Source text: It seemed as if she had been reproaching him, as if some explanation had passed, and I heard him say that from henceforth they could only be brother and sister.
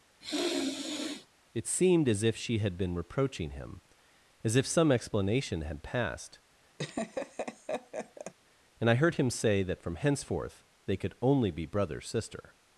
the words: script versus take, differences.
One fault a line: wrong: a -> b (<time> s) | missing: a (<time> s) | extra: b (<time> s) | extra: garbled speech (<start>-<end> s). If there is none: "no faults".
missing: and (12.0 s)